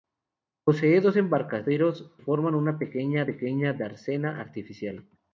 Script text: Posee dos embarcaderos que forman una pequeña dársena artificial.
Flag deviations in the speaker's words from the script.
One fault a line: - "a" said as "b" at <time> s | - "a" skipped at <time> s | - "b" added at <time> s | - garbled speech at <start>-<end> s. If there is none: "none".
- "que" skipped at 2.1 s
- "pequeña" added at 3.2 s